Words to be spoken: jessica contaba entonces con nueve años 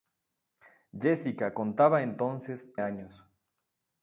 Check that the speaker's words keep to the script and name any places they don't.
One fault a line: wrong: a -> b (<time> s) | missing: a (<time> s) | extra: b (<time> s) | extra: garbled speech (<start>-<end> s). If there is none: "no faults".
missing: con nueve (2.7 s)